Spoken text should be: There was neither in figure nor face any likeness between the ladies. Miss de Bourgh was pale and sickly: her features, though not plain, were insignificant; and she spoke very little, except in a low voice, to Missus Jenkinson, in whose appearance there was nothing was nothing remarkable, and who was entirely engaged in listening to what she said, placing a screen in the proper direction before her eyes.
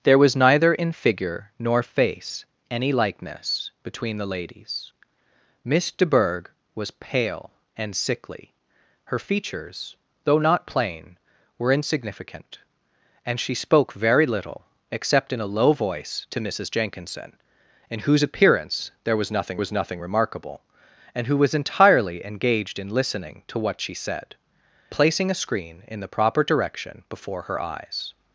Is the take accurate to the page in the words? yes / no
yes